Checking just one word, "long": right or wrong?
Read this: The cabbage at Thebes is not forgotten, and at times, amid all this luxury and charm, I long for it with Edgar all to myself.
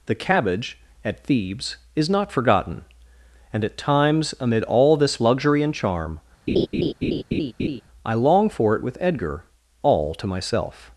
right